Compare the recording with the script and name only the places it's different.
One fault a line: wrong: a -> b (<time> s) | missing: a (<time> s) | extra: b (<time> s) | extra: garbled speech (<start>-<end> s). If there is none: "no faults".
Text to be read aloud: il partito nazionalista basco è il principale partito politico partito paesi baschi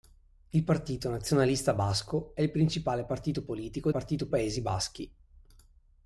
no faults